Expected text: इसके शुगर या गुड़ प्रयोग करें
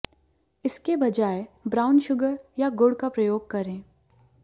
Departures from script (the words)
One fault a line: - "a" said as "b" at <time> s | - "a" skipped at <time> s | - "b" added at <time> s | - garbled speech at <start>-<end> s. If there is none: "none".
- "बजाय ब्राउन" added at 0.9 s
- "का" added at 3.0 s